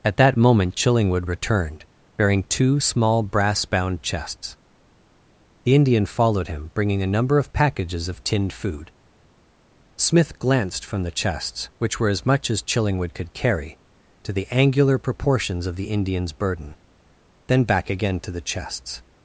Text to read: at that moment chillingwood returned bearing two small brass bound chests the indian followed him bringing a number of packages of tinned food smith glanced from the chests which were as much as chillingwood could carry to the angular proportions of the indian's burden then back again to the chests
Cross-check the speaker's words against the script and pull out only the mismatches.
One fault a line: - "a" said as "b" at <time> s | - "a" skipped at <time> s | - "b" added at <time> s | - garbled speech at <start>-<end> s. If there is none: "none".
none